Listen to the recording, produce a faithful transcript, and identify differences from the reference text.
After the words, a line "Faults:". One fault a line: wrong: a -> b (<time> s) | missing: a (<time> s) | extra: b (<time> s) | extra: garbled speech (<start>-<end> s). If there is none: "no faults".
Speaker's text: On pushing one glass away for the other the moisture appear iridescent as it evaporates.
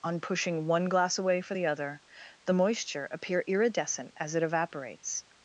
On pushing one glass away for the other the moisture appear iridescent as it evaporates.
Faults:
no faults